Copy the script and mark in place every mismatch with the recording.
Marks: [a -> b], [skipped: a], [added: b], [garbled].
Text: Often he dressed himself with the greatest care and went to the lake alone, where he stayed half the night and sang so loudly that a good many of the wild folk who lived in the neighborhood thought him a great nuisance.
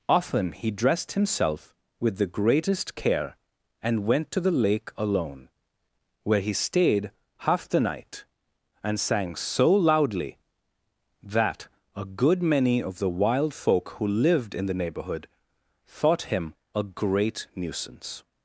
Often he dressed himself with the greatest care and went to the lake alone, where he stayed half the night and sang so loudly that a good many of the wild folk who lived in the neighborhood thought him a great nuisance.